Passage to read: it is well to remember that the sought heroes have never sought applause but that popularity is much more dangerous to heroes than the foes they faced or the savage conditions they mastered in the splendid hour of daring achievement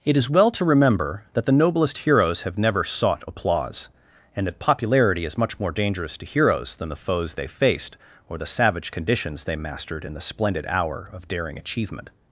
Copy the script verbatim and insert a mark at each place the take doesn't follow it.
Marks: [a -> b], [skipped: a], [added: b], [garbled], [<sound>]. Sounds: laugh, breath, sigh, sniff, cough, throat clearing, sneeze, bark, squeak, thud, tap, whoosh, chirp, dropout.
it is well to remember that the [sought -> noblest] heroes have never sought applause [but -> and] that popularity is much more dangerous to heroes than the foes they faced or the savage conditions they mastered in the splendid hour of daring achievement